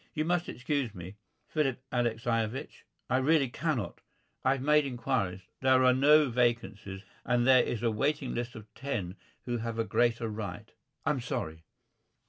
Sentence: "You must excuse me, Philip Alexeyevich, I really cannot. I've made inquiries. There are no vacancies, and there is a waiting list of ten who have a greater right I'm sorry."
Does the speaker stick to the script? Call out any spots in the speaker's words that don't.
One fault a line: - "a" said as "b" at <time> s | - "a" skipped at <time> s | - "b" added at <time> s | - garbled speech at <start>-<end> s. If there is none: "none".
none